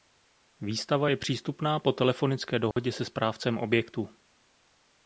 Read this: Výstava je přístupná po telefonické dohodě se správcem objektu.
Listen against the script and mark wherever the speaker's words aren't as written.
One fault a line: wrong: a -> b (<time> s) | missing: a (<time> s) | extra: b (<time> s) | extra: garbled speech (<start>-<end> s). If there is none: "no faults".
no faults